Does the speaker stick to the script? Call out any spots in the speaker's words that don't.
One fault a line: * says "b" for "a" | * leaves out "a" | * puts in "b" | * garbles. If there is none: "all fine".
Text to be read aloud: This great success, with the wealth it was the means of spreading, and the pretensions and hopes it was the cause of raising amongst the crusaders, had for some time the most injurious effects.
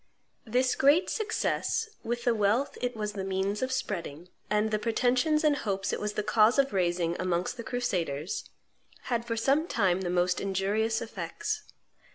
all fine